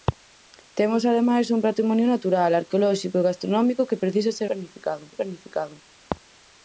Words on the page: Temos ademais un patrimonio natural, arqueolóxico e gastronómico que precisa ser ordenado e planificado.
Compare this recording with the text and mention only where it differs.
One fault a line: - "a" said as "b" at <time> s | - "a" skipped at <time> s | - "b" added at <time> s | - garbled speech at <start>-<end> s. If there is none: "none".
- "ordenado" said as "planificado" at 4.5 s